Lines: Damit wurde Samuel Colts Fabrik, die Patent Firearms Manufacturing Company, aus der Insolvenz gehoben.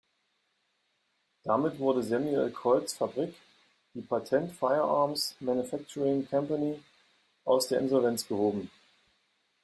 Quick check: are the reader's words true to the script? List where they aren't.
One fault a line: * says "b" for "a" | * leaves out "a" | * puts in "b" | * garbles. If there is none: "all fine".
all fine